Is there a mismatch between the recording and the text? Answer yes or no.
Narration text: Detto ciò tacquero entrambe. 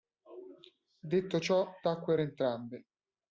no